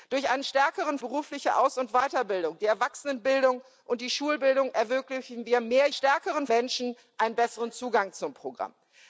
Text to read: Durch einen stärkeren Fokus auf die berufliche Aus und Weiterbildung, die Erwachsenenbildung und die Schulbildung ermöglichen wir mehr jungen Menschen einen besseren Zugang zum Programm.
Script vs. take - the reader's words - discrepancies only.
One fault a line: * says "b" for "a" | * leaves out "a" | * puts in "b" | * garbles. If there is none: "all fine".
* leaves out "Fokus auf die"
* says "stärkeren" for "jungen"